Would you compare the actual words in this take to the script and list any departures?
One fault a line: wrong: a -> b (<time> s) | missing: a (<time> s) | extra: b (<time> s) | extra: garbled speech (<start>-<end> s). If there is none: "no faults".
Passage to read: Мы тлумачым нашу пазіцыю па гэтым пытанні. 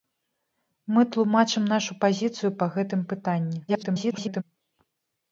extra: garbled speech (3.7-4.4 s)